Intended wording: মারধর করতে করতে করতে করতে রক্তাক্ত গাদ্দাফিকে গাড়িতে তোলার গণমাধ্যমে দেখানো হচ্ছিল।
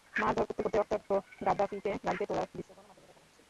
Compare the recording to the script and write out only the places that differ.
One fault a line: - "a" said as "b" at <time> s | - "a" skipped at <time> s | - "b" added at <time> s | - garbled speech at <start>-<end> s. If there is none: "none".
- "করতে করতে" skipped at 0.8 s
- "দৃশ্য" added at 2.5 s